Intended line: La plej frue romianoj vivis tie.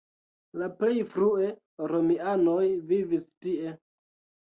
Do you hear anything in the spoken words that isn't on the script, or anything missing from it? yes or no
no